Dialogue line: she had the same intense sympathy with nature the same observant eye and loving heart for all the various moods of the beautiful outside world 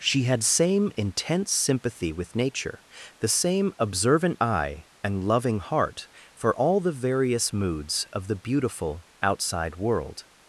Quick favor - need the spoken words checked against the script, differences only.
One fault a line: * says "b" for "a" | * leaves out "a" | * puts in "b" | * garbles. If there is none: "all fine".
* leaves out "the"